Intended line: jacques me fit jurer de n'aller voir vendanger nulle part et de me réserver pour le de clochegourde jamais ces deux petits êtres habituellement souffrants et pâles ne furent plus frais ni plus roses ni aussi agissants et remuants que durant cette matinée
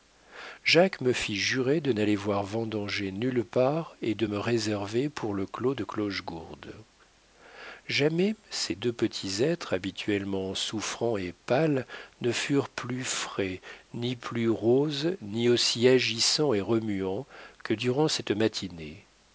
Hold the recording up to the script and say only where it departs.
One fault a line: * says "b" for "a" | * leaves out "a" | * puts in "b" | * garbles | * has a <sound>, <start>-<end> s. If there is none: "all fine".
* puts in "clos"